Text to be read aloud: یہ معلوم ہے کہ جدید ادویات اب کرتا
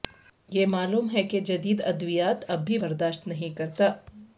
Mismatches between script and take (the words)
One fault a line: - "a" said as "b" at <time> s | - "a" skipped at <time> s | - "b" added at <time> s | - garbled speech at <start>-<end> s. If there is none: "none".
- "بھی برداشت نہیں" added at 2.6 s